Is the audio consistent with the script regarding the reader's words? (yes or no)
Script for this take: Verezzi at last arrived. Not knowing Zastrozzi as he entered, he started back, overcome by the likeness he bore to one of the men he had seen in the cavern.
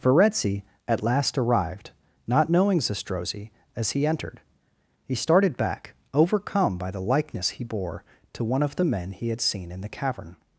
yes